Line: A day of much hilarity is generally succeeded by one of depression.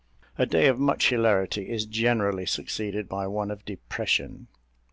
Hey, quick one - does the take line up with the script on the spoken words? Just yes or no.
yes